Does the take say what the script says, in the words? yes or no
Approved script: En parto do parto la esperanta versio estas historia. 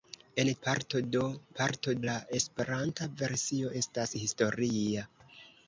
yes